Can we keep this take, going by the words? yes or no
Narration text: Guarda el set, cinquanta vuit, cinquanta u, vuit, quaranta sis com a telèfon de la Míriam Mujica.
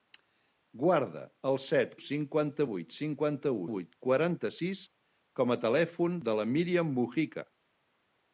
yes